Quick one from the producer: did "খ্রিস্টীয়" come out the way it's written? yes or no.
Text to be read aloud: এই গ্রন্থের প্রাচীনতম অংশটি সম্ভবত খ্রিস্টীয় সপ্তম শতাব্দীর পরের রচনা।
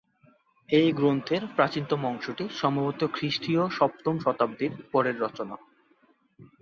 yes